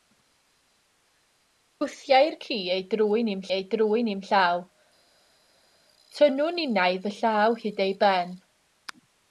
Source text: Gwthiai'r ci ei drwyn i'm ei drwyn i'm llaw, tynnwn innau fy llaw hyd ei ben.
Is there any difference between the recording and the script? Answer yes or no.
no